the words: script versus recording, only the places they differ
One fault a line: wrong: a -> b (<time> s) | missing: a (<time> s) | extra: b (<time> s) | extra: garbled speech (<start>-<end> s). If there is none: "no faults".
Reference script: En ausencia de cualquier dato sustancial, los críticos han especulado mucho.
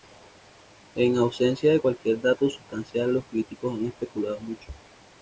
no faults